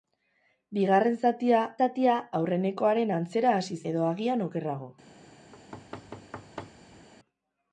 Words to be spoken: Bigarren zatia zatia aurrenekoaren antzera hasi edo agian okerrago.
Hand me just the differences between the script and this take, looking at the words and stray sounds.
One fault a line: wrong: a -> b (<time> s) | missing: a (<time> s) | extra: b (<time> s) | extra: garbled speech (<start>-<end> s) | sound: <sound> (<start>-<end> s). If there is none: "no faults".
sound: thud (5.5-7.1 s)